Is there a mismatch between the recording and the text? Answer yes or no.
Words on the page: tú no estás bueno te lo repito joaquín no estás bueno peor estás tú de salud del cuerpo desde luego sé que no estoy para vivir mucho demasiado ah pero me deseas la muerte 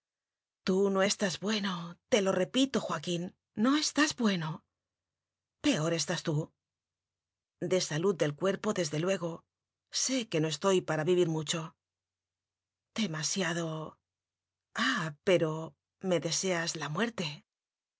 no